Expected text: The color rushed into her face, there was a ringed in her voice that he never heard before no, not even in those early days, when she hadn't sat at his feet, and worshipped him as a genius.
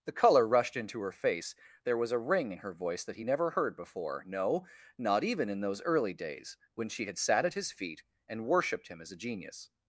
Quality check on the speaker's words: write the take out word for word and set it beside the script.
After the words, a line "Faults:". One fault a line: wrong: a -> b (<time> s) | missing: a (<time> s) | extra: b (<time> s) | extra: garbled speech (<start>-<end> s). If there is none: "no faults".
The color rushed into her face, there was a ring in her voice that he never heard before no, not even in those early days, when she had sat at his feet, and worshipped him as a genius.
Faults:
wrong: ringed -> ring (2.2 s)
wrong: hadn't -> had (7.1 s)